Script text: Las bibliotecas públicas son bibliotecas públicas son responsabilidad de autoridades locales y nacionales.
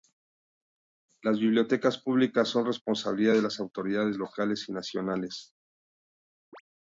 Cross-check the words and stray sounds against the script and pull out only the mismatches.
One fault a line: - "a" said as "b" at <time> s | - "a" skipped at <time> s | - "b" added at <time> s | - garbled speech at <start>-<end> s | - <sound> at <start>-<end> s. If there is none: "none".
- "bibliotecas públicas son" skipped at 2.6 s
- "las" added at 3.4 s
- chirp at 6.5-6.6 s